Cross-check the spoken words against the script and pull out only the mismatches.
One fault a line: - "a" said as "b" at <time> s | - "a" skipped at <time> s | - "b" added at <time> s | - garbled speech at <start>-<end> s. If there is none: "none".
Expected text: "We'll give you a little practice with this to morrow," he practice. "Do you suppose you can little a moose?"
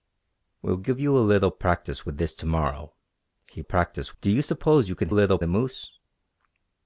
none